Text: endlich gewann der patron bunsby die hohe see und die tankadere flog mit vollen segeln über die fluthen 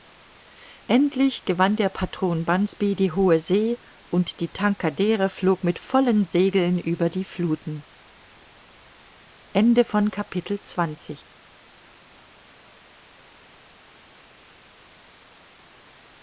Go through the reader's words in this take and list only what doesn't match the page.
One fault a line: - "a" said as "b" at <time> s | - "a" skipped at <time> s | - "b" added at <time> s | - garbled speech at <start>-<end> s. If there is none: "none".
none